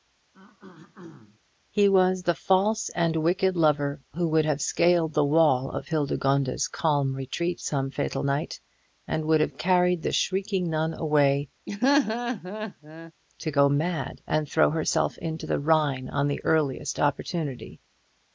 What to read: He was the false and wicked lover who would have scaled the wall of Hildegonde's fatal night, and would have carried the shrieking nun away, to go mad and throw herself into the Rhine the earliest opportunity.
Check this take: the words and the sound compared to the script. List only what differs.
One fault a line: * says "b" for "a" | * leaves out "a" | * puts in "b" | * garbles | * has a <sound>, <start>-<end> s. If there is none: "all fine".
* has a throat clearing, 0.3-1.4 s
* puts in "calm retreat some"
* has a laugh, 11.7-13.1 s
* puts in "on"